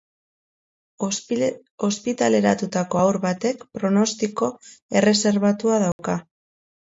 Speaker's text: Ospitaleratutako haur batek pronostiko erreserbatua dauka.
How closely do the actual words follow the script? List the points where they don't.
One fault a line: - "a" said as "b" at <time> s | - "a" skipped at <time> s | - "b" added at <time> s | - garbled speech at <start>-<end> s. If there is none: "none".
none